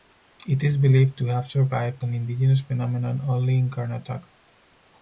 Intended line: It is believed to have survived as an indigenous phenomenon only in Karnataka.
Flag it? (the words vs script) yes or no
yes